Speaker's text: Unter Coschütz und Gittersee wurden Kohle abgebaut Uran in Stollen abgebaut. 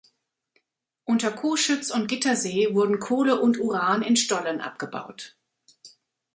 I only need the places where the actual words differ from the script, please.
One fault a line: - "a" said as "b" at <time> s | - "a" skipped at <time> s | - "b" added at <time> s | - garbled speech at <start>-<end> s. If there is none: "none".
- "abgebaut" said as "und" at 3.4 s